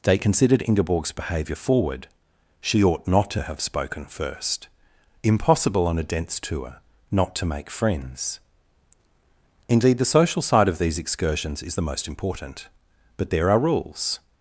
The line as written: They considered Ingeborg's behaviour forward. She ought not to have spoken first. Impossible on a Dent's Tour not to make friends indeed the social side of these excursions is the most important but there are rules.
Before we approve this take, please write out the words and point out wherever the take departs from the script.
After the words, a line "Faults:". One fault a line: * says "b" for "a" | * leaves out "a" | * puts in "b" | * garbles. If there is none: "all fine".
They considered Ingeborg's behaviour forward. She ought not to have spoken first. Impossible on a Dent's Tour not to make friends indeed the social side of these excursions is the most important but there are rules.
Faults:
all fine